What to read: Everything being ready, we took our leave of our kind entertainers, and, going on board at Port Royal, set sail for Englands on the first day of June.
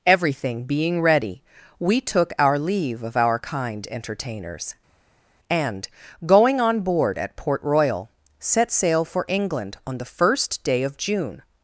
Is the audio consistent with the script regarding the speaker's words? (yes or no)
no